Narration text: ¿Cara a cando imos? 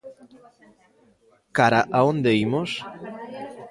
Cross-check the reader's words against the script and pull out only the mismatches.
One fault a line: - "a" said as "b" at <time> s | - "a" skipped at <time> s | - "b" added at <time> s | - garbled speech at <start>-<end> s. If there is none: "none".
- "cando" said as "onde" at 2.1 s